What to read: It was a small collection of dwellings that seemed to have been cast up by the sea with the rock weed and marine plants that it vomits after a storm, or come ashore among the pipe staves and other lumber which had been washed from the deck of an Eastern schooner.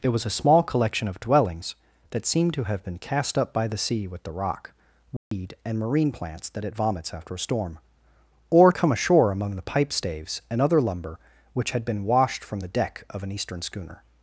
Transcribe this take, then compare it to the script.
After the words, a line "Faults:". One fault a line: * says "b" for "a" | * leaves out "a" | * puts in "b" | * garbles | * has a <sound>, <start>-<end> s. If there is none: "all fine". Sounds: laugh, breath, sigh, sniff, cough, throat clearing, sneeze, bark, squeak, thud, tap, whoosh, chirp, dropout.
It was a small collection of dwellings that seemed to have been cast up by the sea with the rock weed and marine plants that it vomits after a storm, or come ashore among the pipe staves and other lumber which had been washed from the deck of an Eastern schooner.
Faults:
* has a dropout, 5.2-5.3 s